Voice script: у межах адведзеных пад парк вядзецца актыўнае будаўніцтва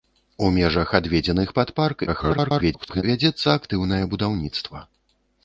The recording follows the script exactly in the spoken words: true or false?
false